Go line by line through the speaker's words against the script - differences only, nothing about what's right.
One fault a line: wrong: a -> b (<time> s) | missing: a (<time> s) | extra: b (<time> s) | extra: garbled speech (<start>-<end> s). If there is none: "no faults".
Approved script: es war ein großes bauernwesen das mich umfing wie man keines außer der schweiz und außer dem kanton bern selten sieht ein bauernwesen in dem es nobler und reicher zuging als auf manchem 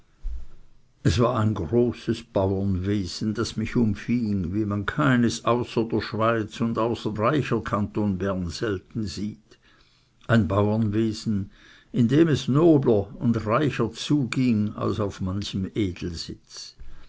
wrong: dem -> reicher (7.2 s)